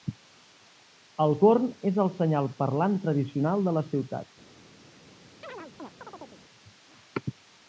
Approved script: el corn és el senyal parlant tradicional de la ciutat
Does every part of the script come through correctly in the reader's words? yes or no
yes